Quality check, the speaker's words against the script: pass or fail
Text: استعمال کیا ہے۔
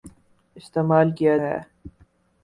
pass